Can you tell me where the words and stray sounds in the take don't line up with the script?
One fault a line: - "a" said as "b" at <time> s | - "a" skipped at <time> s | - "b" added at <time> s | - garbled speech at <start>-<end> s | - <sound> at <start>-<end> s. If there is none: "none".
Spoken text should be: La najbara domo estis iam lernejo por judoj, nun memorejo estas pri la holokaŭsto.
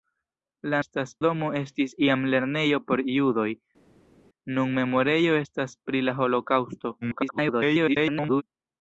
- "najbara" said as "estas" at 0.8 s
- garbled speech at 7.0-8.4 s